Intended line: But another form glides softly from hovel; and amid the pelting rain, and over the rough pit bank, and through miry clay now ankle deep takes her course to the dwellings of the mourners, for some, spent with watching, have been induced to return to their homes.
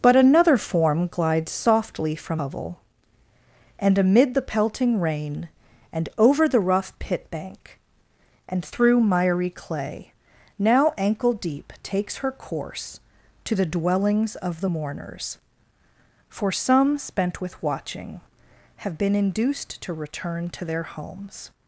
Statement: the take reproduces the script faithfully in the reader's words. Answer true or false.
true